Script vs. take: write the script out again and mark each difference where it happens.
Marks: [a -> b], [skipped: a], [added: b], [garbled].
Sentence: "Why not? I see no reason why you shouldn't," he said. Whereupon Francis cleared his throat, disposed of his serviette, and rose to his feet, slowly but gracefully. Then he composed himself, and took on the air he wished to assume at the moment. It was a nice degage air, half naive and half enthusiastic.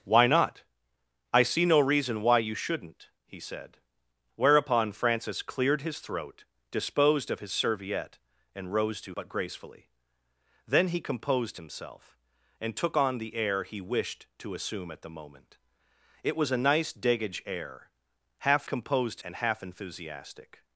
"Why not? I see no reason why you shouldn't," he said. Whereupon Francis cleared his throat, disposed of his serviette, and rose to [skipped: his feet, slowly] but gracefully. Then he composed himself, and took on the air he wished to assume at the moment. It was a nice degage air, half [naive -> composed] and half enthusiastic.